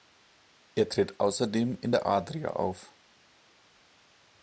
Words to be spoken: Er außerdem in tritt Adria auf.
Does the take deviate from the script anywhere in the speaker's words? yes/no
yes